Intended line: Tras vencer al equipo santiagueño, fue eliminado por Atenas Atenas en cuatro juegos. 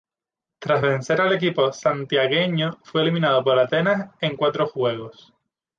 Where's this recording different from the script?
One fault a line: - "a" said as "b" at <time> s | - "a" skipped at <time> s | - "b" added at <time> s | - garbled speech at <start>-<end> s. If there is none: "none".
- "Atenas" skipped at 4.1 s